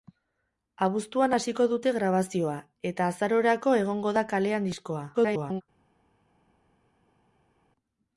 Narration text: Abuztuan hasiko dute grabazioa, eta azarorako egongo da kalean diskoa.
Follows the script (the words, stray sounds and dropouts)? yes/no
no